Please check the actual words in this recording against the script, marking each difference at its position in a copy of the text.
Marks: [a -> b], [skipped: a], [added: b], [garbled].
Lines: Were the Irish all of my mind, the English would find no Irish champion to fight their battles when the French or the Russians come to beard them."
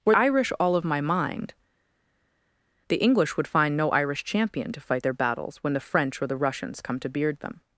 Were [skipped: the] Irish all of my mind, the English would find no Irish champion to fight their battles when the French or the Russians come to beard them."